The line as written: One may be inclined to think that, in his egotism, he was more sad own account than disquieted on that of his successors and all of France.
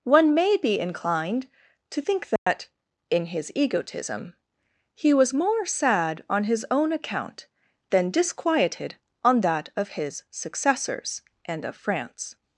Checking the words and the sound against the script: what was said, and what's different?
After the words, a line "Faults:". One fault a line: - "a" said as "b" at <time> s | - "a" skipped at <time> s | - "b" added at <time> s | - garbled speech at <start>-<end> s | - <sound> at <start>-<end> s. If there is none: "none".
One may be inclined to think that, in his egotism, he was more sad on his own account than disquieted on that of his successors and of France.
Faults:
- dropout at 2.4-2.5 s
- "on his" added at 6.3 s
- "all" skipped at 11.6 s